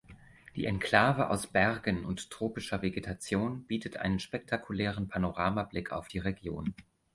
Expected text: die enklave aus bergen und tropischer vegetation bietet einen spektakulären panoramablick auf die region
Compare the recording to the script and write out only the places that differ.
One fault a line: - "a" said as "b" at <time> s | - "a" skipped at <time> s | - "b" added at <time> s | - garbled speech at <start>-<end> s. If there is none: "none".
none